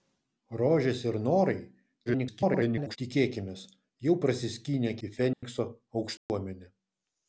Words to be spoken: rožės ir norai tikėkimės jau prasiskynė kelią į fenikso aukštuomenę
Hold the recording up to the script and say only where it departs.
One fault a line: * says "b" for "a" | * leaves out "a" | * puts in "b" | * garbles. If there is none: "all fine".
* garbles
* leaves out "kelią"